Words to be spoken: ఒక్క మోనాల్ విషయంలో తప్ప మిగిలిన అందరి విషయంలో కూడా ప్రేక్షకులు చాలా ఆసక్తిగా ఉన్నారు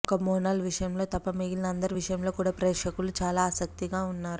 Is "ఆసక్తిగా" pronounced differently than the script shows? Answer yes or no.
no